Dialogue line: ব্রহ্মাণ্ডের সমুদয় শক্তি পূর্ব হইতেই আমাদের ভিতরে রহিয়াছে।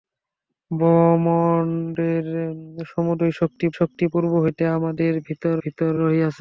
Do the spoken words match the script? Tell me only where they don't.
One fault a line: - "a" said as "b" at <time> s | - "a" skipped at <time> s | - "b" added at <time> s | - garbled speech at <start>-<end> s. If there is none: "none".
- "শক্তি" added at 3.7 s
- "ভিতরে" added at 5.6 s